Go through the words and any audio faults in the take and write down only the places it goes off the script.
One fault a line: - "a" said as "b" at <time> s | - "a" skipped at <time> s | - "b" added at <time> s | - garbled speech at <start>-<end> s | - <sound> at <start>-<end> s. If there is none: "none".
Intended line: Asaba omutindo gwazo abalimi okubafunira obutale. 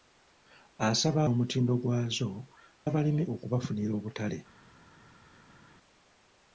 none